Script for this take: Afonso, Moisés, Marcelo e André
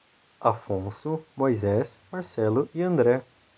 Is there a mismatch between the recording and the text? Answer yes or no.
no